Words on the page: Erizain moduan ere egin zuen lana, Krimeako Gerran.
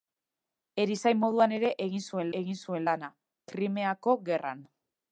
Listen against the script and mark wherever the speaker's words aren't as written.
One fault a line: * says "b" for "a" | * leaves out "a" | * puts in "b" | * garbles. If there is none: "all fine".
* puts in "egin zuen"